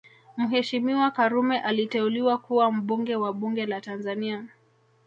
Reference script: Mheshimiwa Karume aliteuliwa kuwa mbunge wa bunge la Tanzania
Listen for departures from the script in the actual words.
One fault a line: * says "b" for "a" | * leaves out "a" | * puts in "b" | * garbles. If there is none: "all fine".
all fine